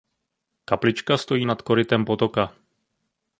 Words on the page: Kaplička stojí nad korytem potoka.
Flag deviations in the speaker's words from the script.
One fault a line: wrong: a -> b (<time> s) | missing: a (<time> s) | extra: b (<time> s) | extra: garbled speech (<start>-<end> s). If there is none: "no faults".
no faults